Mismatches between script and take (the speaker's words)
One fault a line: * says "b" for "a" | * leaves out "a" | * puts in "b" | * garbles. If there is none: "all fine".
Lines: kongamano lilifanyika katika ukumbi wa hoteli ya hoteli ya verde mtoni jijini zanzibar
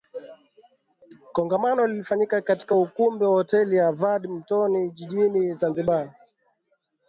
* leaves out "hoteli ya"